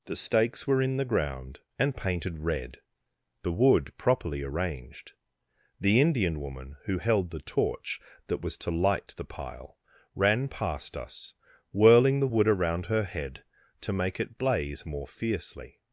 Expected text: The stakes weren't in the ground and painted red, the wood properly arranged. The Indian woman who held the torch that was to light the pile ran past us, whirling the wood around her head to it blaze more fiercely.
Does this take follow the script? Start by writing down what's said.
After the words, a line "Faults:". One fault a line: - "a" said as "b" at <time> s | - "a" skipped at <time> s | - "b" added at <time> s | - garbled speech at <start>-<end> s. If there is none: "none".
The stakes were in the ground and painted red, the wood properly arranged. The Indian woman who held the torch that was to light the pile ran past us, whirling the wood around her head to make it blaze more fiercely.
Faults:
- "weren't" said as "were" at 0.7 s
- "make" added at 13.9 s